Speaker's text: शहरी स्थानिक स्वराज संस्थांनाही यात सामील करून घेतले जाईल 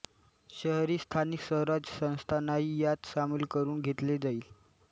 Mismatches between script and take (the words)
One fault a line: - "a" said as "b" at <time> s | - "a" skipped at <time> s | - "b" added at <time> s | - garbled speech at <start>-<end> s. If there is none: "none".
none